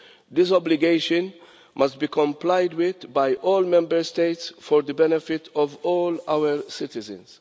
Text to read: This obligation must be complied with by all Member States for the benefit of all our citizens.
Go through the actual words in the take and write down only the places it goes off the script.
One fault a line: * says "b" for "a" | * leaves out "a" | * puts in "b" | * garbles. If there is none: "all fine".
all fine